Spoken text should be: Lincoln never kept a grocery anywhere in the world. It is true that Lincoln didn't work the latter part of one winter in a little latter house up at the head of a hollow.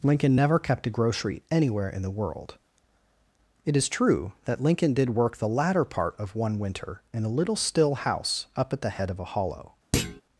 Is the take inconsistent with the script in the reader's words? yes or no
yes